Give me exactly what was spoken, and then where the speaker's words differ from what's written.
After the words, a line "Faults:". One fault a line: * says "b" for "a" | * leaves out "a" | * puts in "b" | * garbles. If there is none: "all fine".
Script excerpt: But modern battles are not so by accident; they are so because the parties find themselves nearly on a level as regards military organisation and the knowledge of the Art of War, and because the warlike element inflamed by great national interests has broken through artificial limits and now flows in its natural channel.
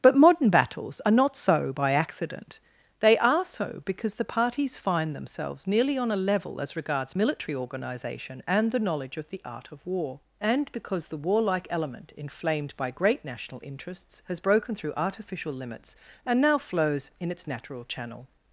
But modern battles are not so by accident; they are so because the parties find themselves nearly on a level as regards military organisation and the knowledge of the Art of War, and because the warlike element inflamed by great national interests has broken through artificial limits and now flows in its natural channel.
Faults:
all fine